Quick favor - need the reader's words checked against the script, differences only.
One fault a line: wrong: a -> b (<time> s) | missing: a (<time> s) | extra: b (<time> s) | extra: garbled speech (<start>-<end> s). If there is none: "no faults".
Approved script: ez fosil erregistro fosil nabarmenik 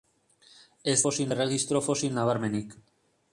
no faults